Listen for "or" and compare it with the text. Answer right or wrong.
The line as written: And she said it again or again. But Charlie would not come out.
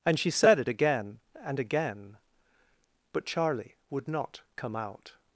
wrong